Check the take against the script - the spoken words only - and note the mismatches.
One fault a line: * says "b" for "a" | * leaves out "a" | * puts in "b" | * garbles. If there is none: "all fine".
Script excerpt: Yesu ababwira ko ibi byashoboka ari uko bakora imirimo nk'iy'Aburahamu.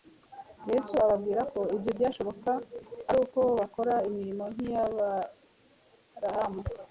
* says "ibyo" for "ibi"